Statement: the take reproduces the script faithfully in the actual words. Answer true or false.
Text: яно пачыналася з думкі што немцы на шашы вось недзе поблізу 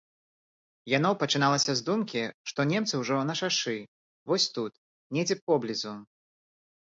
false